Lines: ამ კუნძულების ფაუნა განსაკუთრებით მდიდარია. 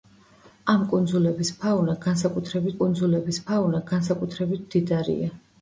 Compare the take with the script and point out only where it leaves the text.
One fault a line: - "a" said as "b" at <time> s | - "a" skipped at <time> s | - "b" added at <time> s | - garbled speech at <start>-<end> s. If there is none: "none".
- "კუნძულების ფაუნა განსაკუთრებით" added at 2.8 s